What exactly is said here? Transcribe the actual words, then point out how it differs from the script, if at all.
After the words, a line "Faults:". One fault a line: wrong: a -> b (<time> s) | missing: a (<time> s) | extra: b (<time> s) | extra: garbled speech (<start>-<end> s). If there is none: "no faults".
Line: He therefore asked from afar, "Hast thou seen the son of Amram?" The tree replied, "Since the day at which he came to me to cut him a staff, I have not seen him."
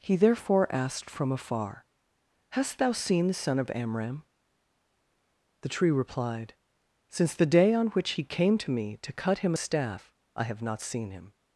He therefore asked from afar, "Hast thou seen the son of Amram?" The tree replied, "Since the day on which he came to me to cut him a staff, I have not seen him."
Faults:
wrong: at -> on (7.8 s)